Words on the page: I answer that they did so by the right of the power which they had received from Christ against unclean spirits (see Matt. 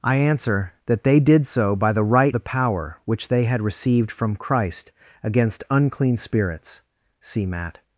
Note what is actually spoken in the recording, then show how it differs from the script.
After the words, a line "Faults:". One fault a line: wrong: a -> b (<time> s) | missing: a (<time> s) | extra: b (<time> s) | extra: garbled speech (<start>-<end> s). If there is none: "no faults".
I answer that they did so by the right the power which they had received from Christ against unclean spirits (see Matt.
Faults:
missing: of (2.4 s)